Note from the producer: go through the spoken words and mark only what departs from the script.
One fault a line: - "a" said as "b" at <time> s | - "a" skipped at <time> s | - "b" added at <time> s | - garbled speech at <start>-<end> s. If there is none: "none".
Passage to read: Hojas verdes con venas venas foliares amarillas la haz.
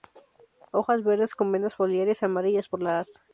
- "venas" skipped at 1.8 s
- "por" added at 2.7 s